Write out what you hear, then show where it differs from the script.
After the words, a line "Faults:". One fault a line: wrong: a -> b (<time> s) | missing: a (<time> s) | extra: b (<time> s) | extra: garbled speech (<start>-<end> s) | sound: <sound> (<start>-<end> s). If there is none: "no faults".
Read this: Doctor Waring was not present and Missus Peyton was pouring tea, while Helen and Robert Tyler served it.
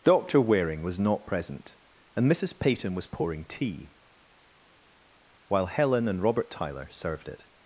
Doctor Waring was not present and Missus Peyton was pouring tea, while Helen and Robert Tyler served it.
Faults:
no faults